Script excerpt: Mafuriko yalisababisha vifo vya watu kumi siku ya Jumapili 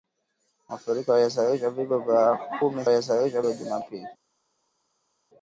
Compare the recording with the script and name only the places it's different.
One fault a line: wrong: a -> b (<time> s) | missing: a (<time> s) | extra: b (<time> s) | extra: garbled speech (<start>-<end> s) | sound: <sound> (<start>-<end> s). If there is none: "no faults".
wrong: siku -> yalisababisha (2.9 s)